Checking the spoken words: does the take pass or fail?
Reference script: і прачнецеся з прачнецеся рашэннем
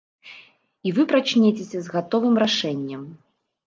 fail